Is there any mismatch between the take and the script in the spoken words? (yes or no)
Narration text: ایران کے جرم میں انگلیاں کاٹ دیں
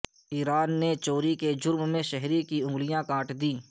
yes